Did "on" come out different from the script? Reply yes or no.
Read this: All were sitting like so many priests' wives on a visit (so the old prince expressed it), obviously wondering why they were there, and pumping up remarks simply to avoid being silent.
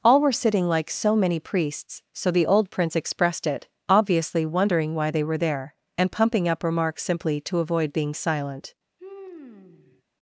yes